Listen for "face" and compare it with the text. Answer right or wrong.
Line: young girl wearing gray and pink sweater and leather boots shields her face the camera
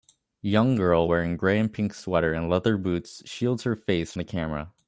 right